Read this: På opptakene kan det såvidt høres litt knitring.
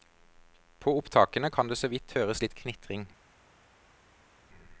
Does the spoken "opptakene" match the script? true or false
true